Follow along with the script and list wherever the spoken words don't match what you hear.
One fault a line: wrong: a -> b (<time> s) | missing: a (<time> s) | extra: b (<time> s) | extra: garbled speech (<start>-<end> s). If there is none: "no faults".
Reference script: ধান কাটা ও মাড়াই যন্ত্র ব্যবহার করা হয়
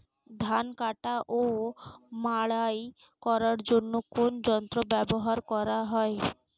extra: করার জন্য কোন (3.2 s)